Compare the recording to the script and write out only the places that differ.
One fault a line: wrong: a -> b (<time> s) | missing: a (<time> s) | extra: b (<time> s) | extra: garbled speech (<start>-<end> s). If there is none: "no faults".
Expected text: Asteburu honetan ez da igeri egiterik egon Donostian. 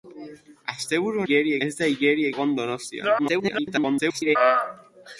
wrong: honetan -> igeri (1.2 s)
missing: egiterik (2.3 s)
extra: garbled speech (3.2-4.4 s)